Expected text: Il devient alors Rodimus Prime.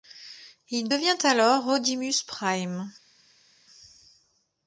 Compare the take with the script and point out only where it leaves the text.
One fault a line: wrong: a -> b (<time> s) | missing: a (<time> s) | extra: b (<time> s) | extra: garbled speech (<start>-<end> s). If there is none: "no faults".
no faults